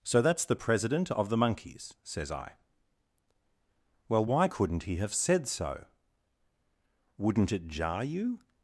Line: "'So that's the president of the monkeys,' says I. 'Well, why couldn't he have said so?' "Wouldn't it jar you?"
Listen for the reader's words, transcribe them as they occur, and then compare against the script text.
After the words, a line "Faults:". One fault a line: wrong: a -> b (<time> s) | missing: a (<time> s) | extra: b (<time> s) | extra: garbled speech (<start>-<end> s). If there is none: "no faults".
"'So that's the president of the monkeys,' says I. 'Well, why couldn't he have said so?' "Wouldn't it jar you?"
Faults:
no faults